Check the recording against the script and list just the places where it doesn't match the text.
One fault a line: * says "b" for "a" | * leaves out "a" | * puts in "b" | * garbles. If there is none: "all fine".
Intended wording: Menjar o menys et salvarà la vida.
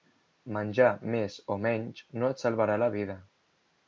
* puts in "més"
* puts in "no"